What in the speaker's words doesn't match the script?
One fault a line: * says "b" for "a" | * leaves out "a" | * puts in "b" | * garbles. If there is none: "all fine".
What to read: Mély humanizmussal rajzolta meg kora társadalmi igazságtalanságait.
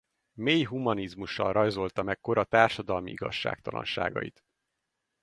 all fine